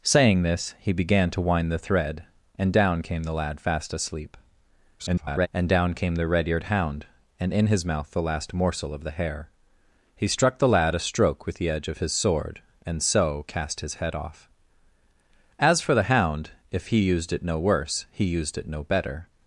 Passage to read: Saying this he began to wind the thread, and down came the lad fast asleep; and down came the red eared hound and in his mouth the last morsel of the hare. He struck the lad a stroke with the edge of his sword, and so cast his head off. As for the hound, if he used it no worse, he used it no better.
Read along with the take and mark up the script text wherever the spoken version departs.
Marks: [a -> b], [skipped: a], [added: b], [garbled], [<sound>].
Saying this he began to wind the thread, and down came the lad fast asleep; [garbled] and down came the red eared hound and in his mouth the last morsel of the hare. He struck the lad a stroke with the edge of his sword, and so cast his head off. As for the hound, if he used it no worse, he used it no better.